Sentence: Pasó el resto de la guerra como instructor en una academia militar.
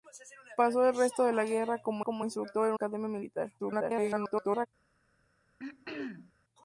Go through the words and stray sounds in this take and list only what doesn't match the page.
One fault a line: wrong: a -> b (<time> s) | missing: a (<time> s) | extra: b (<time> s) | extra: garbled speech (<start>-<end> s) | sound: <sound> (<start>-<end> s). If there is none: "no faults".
extra: como (2.0 s)
missing: una (2.7 s)
extra: garbled speech (3.6-4.7 s)
sound: throat clearing (5.6-6.3 s)